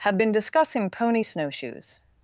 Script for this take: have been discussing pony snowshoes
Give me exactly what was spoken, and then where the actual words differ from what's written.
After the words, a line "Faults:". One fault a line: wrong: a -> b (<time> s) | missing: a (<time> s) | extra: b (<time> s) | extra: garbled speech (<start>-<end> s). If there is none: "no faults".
have been discussing pony snowshoes
Faults:
no faults